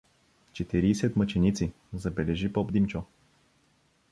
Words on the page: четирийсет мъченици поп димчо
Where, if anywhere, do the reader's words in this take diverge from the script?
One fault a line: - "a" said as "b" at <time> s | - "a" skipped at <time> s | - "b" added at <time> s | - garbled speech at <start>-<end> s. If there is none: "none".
- "забележи" added at 1.9 s